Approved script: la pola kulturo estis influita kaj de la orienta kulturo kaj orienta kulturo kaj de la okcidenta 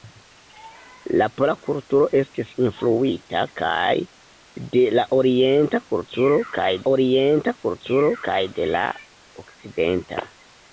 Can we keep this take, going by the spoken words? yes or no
yes